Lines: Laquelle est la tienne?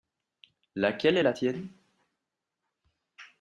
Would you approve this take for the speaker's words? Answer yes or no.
yes